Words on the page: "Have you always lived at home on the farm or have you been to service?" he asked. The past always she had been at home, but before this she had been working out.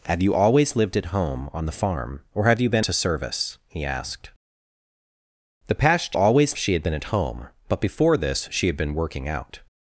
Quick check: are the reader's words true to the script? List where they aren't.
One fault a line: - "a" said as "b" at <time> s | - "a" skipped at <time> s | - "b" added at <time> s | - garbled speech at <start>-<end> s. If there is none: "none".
none